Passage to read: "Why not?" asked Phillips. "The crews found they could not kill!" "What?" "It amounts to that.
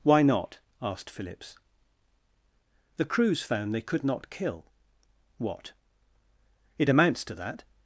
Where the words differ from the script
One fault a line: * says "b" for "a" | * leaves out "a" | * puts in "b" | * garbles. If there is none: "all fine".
all fine